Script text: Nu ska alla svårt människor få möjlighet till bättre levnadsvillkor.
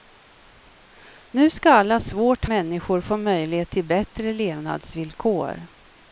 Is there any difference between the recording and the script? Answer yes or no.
no